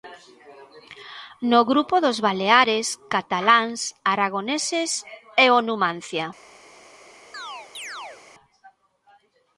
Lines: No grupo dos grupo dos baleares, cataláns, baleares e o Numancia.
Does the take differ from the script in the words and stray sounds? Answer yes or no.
yes